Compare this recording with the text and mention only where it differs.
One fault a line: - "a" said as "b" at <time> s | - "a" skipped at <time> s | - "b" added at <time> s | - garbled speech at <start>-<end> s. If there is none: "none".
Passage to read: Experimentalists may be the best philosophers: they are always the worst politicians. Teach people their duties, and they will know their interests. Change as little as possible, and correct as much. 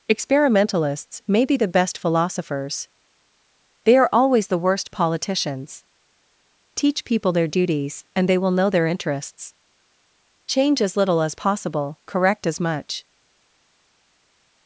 - "and" skipped at 12.0 s